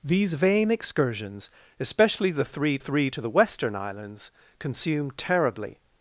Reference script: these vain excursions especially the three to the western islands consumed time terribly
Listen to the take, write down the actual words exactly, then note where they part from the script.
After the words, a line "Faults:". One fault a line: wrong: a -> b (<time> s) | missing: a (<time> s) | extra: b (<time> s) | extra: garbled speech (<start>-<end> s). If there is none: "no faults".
these vain excursions especially the three three to the western islands consumed terribly
Faults:
extra: three (2.8 s)
missing: time (5.2 s)